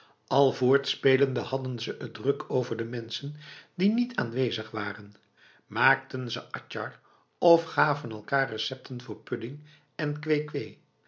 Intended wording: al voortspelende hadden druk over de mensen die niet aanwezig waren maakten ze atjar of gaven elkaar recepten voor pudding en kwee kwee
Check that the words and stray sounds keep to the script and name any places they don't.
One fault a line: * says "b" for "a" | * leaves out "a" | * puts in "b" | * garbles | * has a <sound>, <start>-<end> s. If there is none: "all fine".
* puts in "ze het"